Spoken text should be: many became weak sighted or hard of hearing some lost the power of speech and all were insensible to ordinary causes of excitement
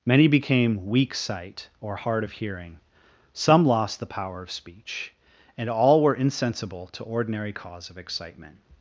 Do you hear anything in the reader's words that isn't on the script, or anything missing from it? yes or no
yes